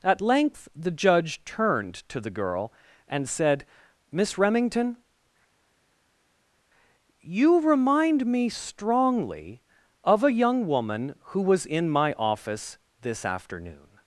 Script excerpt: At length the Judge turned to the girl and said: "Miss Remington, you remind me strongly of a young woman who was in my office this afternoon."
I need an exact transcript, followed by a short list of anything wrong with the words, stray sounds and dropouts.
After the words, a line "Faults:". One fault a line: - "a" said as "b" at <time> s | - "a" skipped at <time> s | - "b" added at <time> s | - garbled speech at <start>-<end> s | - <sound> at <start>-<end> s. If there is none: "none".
At length the Judge turned to the girl and said: "Miss Remington, you remind me strongly of a young woman who was in my office this afternoon."
Faults:
none